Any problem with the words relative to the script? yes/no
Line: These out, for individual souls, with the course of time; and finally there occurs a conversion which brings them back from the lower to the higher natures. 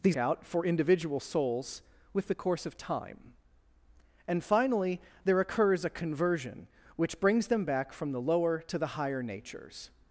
no